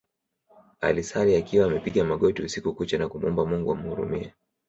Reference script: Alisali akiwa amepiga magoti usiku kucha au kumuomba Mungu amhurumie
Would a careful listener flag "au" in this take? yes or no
yes